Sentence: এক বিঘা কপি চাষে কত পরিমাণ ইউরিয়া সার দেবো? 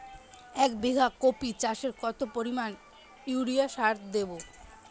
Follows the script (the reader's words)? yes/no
yes